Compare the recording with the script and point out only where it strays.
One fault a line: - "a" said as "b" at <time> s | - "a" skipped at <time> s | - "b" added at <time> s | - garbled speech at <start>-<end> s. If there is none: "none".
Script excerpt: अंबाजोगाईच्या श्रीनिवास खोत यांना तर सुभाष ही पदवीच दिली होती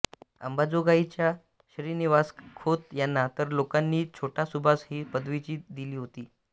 - "लोकांनी छोटा" added at 3.5 s